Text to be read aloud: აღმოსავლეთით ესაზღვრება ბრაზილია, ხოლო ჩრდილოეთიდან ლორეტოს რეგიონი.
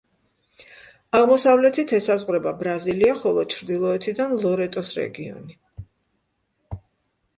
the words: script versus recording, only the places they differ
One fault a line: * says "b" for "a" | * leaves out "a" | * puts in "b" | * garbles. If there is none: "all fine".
all fine